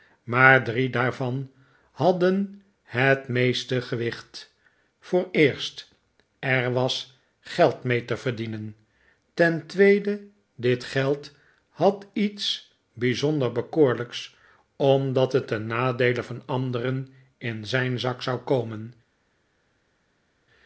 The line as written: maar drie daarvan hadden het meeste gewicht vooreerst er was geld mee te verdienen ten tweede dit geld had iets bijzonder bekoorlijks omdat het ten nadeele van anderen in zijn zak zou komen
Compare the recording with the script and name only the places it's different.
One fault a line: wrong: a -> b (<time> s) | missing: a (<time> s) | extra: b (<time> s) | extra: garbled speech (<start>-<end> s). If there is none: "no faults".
no faults